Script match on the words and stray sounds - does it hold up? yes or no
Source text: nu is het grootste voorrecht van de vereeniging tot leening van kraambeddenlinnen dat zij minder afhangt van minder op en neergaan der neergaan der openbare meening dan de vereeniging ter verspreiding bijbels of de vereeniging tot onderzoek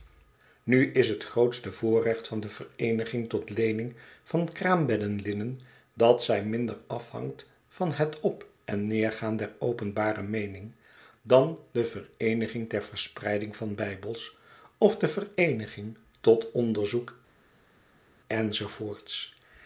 no